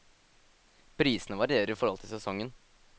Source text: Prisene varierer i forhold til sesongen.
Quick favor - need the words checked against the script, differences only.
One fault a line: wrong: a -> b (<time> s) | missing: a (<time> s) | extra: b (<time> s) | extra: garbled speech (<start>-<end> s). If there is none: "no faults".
no faults